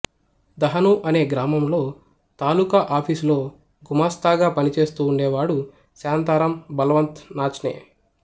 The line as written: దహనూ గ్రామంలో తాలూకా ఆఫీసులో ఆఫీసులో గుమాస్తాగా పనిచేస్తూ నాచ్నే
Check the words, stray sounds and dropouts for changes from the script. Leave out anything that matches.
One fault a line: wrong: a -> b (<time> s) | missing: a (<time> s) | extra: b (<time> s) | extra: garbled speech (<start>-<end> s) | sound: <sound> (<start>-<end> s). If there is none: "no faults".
extra: అనే (1.1 s)
missing: ఆఫీసులో (3.4 s)
extra: ఉండేవాడు శాంతారామ్ బల్వంత్ (5.0 s)